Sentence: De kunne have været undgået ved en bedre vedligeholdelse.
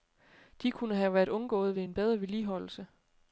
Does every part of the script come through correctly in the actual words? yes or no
yes